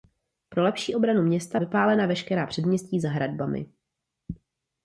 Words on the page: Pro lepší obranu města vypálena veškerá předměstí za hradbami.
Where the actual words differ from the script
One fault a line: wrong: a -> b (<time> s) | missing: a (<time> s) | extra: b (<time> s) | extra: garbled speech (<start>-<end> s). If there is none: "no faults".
no faults